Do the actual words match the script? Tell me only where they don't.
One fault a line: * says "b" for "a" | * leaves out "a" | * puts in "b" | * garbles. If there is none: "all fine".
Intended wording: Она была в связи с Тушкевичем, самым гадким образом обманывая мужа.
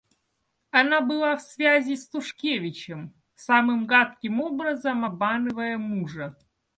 all fine